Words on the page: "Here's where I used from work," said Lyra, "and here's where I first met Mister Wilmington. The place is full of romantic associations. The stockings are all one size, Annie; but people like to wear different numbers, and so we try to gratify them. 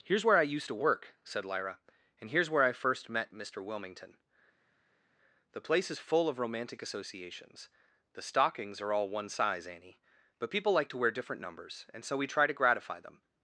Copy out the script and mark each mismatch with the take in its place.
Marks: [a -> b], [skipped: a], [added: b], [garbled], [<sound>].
"Here's where I used [from -> to] work," said Lyra, "and here's where I first met Mister Wilmington. The place is full of romantic associations. The stockings are all one size, Annie; but people like to wear different numbers, and so we try to gratify them.